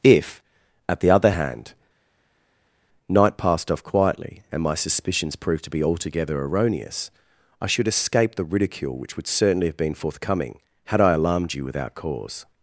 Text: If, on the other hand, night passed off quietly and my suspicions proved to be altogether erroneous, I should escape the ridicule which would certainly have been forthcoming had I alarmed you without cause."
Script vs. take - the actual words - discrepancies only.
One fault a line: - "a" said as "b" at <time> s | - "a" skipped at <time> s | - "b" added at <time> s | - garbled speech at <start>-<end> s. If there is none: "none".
- "on" said as "at" at 0.9 s